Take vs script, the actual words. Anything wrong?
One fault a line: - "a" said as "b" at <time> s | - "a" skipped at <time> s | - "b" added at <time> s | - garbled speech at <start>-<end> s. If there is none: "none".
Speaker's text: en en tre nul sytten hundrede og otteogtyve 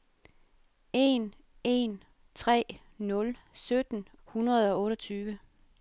none